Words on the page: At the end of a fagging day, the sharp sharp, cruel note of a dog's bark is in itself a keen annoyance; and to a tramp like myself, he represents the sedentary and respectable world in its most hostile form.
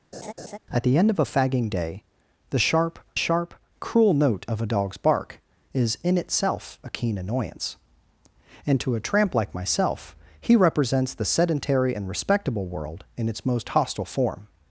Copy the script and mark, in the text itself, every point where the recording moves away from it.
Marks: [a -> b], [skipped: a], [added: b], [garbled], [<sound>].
[laugh] At the end of a fagging day, the sharp sharp, cruel note of a dog's bark is in itself a keen annoyance; and to a tramp like myself, he represents the sedentary and respectable world in its most hostile form.